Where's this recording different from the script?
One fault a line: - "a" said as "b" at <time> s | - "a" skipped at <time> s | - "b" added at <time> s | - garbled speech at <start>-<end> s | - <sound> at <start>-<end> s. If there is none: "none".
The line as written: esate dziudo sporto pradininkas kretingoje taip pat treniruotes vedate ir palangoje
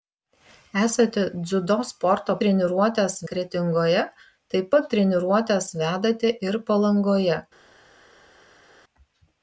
- "pradininkas" said as "treniruotes" at 2.4 s